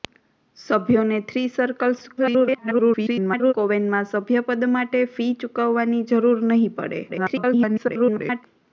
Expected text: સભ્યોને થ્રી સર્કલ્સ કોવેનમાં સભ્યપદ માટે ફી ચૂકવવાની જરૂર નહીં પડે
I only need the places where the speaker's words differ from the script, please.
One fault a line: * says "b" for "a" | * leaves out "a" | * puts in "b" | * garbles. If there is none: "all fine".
* garbles
* garbles